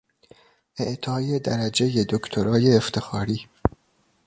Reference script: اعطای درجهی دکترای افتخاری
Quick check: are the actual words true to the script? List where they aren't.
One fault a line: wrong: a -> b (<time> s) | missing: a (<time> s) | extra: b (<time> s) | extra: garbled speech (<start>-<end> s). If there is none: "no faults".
no faults